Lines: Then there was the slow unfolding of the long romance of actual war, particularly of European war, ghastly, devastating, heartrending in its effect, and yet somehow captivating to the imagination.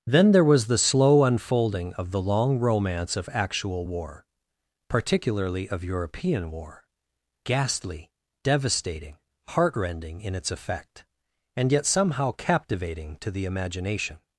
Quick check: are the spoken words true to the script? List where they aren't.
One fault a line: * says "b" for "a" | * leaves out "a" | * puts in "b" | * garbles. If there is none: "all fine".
all fine